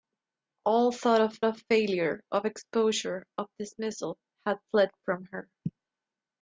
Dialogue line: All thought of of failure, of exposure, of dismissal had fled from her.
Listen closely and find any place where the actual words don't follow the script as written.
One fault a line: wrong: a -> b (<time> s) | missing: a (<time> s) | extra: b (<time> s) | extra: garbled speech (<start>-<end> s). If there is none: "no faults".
no faults